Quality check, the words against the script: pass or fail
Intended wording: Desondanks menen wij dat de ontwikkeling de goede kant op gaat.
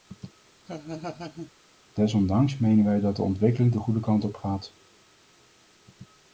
pass